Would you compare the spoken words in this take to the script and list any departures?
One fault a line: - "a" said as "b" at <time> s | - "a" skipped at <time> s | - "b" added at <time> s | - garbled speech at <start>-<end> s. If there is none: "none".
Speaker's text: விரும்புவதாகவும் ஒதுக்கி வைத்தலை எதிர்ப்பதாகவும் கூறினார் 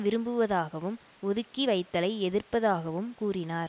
none